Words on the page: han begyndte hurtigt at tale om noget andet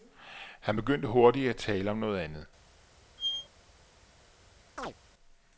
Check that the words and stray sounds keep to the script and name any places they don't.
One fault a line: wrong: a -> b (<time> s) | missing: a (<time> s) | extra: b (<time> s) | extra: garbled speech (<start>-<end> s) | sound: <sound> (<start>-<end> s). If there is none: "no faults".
sound: squeak (3.2-3.5 s)
sound: chirp (4.8-4.9 s)